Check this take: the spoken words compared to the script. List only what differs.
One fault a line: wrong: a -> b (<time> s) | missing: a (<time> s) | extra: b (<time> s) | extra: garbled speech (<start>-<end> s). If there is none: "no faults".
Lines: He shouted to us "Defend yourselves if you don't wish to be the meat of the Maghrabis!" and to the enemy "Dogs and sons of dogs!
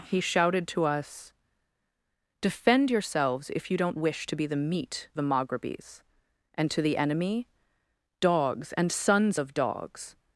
missing: of (5.1 s)